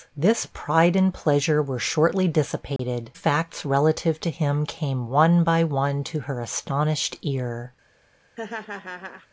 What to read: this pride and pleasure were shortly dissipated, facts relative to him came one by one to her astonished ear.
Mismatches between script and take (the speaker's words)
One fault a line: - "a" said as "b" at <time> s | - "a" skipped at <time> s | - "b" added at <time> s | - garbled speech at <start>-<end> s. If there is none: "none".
none